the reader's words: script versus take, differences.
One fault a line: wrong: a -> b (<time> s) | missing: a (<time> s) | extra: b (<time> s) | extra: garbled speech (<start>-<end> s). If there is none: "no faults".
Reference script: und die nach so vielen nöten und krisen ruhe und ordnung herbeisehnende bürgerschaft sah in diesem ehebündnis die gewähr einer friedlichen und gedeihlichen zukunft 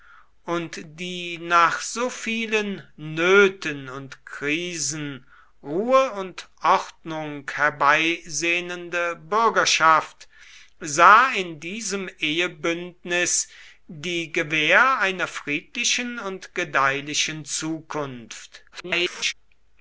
extra: garbled speech (18.7-19.3 s)